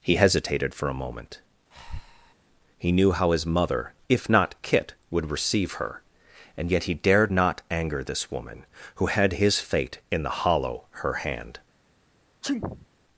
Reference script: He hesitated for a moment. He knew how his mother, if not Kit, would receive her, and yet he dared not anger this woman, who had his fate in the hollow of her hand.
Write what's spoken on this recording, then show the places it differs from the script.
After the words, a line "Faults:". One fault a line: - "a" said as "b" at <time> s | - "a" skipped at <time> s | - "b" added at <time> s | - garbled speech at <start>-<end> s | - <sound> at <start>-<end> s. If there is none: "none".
He hesitated for a moment. He knew how his mother, if not Kit, would receive her, and yet he dared not anger this woman, who had his fate in the hollow her hand.
Faults:
- breath at 1.7-2.3 s
- "of" skipped at 10.9 s
- sneeze at 12.4-12.9 s